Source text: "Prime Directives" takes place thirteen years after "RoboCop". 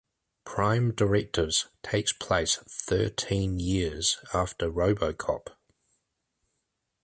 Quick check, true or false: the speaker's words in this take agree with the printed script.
true